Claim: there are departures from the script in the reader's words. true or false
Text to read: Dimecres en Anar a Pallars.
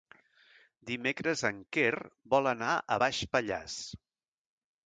true